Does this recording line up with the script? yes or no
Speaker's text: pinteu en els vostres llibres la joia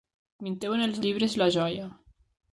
no